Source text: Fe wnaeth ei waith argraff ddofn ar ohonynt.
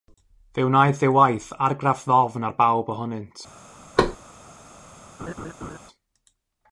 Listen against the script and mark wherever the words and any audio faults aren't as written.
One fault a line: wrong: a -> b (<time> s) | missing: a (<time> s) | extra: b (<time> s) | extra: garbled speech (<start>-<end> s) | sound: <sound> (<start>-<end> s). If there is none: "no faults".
extra: bawb (2.6 s)
sound: thud (4.0-4.2 s)
sound: laugh (5.2-5.8 s)